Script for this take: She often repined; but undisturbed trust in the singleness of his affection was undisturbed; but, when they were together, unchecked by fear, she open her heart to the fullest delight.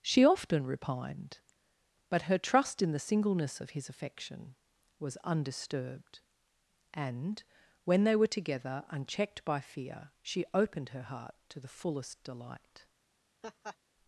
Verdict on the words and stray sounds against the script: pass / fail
fail